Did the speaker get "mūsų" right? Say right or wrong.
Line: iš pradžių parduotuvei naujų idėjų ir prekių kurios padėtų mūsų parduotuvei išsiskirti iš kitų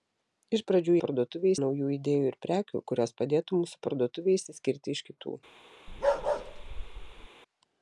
right